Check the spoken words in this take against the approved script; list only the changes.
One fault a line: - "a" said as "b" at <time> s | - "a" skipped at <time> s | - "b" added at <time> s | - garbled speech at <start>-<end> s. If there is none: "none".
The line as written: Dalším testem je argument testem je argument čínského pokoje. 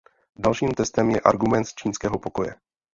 - "testem je argument" skipped at 1.7 s